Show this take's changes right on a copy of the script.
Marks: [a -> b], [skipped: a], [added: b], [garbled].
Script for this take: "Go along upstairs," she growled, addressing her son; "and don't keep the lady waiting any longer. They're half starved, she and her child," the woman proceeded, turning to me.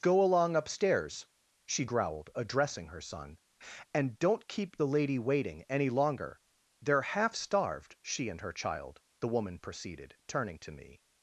"Go along upstairs," she growled, addressing her son; "and don't keep the lady waiting any longer. They're half starved, she and her child," the woman proceeded, turning to me.